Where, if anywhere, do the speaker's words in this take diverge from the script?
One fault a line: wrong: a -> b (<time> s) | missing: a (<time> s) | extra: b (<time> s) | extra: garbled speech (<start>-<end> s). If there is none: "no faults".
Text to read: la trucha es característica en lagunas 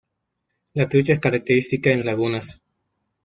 no faults